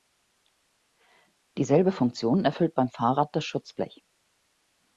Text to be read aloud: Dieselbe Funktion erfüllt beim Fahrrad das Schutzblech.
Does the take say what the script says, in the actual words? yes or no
yes